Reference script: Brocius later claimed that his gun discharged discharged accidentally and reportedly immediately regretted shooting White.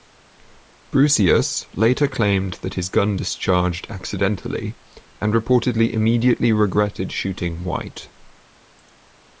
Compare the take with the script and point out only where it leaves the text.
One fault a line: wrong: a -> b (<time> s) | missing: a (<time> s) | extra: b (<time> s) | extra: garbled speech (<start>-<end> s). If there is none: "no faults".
missing: discharged (3.9 s)